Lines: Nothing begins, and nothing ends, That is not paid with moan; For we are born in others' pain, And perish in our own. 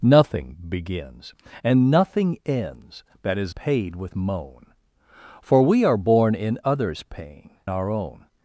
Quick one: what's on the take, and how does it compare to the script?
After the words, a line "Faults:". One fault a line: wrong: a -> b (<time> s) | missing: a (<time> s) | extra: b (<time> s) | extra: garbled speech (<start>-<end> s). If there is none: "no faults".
Nothing begins, and nothing ends, That is paid with moan; For we are born in others' pain, Our own.
Faults:
missing: not (3.5 s)
missing: And perish in (7.5 s)